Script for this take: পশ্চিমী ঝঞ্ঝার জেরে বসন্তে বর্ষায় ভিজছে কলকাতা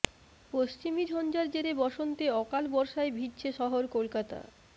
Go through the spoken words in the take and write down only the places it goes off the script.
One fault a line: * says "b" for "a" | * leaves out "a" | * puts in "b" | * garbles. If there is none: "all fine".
* puts in "অকাল"
* puts in "শহর"